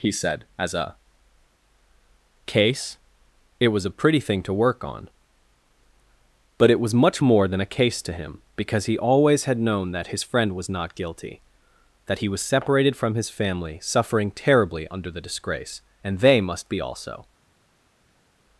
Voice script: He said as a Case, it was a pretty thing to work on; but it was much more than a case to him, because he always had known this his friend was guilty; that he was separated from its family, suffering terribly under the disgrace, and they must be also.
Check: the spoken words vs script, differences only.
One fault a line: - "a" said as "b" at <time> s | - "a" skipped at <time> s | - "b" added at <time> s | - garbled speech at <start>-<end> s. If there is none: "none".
- "this" said as "that" at 9.9 s
- "not" added at 10.7 s
- "its" said as "his" at 13.2 s